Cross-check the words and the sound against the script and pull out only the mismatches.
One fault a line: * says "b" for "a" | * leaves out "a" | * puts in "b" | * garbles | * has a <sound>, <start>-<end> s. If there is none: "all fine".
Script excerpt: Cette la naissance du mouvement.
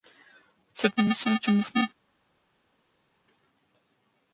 all fine